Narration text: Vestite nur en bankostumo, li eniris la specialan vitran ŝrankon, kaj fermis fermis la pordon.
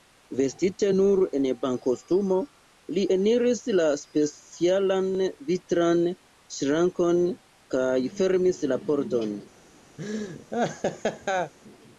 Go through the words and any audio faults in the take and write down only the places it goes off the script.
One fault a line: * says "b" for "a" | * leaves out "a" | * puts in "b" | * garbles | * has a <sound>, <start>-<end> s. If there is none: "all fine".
* leaves out "fermis"
* has a laugh, 10.0-11.5 s